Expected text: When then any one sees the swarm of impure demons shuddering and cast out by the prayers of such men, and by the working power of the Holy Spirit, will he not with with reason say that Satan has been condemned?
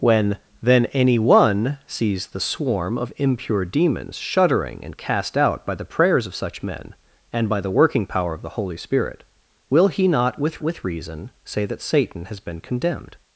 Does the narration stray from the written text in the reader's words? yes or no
no